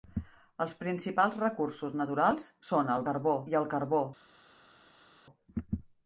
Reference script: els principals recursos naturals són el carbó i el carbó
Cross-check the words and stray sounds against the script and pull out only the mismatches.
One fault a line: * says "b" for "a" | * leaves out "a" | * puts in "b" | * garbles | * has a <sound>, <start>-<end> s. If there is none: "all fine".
all fine